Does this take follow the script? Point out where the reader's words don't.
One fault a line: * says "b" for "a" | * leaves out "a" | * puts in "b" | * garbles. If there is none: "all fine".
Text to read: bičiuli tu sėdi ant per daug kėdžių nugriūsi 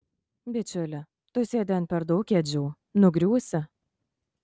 all fine